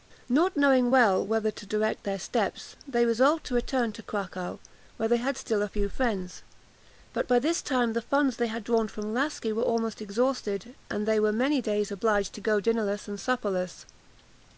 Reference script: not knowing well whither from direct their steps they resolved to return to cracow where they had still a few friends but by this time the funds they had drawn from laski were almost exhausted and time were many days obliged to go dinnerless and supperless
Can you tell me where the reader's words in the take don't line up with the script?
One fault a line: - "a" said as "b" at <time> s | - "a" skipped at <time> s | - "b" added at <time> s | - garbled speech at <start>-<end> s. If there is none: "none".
- "from" said as "to" at 1.5 s
- "time" said as "they" at 11.1 s